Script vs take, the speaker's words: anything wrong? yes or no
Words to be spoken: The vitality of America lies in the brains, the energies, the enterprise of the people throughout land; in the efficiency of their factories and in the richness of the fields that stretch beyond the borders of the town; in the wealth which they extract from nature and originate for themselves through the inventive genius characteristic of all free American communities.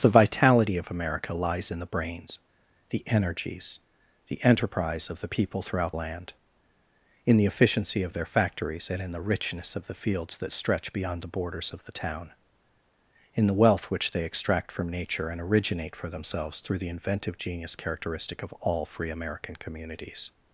no